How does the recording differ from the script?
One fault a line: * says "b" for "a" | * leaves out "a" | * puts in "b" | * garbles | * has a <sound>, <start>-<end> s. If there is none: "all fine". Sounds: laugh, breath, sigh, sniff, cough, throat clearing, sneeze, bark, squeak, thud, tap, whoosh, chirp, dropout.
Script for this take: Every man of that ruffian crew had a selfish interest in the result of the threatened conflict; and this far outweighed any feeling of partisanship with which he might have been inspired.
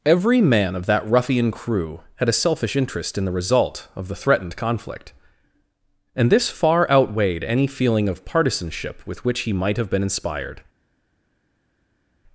all fine